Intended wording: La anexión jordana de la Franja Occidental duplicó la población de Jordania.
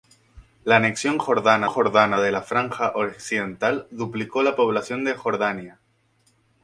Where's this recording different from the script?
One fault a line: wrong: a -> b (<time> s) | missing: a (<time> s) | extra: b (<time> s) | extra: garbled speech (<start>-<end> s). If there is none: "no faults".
extra: jordana (1.7 s)